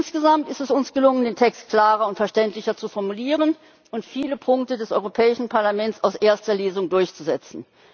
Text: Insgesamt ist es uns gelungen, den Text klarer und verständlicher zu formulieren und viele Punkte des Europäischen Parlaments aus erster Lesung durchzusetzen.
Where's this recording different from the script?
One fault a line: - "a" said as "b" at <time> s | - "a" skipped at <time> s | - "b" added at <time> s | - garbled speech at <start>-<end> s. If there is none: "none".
none